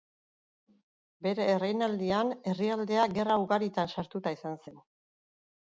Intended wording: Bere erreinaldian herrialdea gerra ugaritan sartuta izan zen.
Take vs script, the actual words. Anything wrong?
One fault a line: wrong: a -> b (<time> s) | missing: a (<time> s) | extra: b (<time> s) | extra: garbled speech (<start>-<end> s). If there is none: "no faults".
no faults